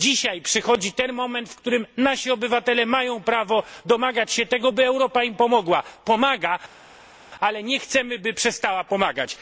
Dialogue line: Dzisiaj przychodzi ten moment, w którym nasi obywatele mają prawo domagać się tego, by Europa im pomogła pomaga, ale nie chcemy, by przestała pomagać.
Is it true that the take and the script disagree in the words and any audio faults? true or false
false